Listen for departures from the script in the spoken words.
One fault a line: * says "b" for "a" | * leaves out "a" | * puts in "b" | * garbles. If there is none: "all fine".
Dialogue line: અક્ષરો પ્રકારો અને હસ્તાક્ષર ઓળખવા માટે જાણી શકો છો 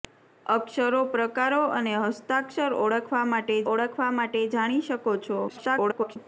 * puts in "ઓળખવા માટે"
* garbles